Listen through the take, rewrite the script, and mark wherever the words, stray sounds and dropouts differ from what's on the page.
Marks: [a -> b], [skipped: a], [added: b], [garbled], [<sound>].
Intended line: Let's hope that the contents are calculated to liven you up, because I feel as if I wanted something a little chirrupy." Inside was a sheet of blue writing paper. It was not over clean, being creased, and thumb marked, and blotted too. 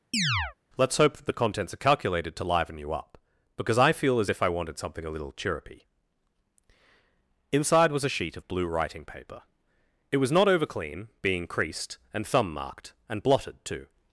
[chirp] Let's hope that the contents are calculated to liven you up, because I feel as if I wanted something a little chirrupy." Inside was a sheet of blue writing paper. It was not over clean, being creased, and thumb marked, and blotted too.